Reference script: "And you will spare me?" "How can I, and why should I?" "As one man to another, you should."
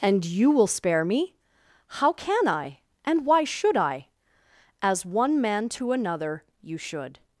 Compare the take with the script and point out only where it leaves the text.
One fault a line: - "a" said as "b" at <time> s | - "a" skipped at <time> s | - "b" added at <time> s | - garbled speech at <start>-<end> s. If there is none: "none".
none